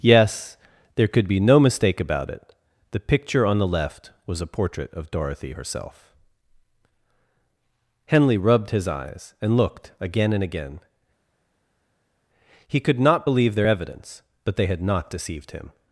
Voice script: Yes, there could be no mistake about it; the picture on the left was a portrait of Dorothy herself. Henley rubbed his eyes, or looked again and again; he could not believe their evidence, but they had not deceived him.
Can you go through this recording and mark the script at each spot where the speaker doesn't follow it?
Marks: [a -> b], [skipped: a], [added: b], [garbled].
Yes, there could be no mistake about it; the picture on the left was a portrait of Dorothy herself. Henley rubbed his eyes, [or -> and] looked again and again; he could not believe their evidence, but they had not deceived him.